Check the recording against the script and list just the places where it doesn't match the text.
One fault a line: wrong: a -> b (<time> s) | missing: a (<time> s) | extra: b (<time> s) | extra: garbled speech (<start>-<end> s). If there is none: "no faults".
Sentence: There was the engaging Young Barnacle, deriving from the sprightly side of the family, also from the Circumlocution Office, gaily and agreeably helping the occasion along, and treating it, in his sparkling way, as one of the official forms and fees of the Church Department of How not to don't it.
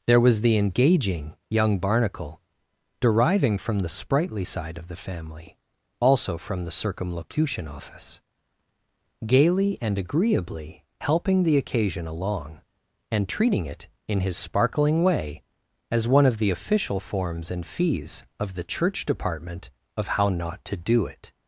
wrong: don't -> do (20.8 s)